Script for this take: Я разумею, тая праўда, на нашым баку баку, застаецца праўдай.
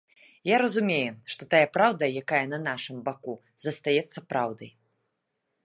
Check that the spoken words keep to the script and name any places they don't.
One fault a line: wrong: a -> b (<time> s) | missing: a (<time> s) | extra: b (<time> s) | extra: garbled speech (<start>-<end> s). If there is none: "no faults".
extra: што (1.3 s)
extra: якая (2.2 s)
missing: баку (3.3 s)